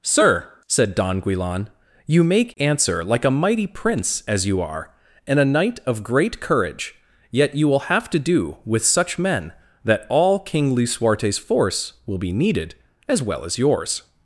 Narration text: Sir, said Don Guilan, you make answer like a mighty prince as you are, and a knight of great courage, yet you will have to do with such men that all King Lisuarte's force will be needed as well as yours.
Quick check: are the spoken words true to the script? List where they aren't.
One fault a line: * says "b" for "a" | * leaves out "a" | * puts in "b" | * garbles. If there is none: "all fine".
all fine